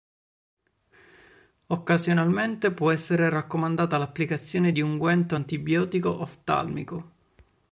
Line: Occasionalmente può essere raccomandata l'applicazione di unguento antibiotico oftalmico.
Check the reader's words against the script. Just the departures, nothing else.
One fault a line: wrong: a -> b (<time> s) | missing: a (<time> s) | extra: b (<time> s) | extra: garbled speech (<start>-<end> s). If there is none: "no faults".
no faults